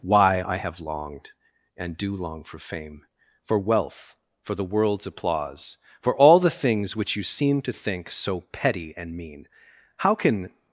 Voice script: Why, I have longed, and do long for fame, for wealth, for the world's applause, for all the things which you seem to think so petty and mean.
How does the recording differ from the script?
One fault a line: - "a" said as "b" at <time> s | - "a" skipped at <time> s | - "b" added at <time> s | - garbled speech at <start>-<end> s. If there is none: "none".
- "How can" added at 10.0 s